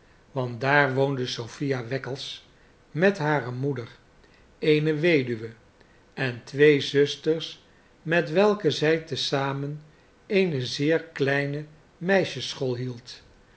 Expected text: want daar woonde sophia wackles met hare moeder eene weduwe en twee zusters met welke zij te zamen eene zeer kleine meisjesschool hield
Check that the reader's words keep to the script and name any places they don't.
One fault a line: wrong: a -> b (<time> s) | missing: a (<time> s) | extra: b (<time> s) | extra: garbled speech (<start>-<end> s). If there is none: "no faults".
no faults